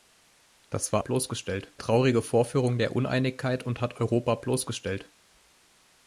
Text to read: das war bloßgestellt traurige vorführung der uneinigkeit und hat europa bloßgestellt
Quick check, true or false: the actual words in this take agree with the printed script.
true